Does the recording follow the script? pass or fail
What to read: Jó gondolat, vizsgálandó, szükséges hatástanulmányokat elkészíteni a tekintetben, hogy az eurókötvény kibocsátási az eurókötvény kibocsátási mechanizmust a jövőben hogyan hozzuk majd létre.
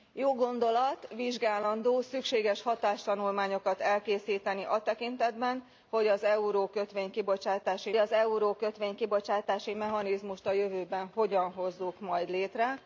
pass